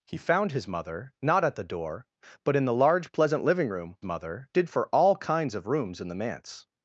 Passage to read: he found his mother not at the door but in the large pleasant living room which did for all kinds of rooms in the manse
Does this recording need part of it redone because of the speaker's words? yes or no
yes